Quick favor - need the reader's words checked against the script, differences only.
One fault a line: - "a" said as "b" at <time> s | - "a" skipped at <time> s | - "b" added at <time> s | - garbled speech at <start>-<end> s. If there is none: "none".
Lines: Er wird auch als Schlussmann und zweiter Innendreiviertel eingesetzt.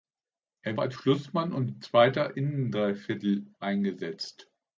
- "wird auch" skipped at 0.8 s